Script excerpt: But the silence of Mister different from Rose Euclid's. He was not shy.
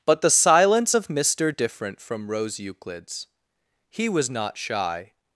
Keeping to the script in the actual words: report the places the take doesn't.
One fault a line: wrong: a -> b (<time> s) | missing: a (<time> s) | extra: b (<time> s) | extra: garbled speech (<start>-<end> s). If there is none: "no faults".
no faults